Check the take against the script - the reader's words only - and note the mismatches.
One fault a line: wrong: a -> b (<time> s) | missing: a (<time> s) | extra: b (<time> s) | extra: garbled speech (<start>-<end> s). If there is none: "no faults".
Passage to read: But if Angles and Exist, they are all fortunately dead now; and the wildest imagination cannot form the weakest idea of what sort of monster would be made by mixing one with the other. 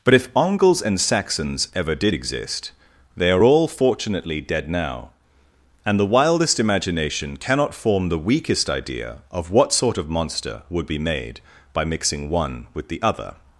extra: Saxons ever did (1.0 s)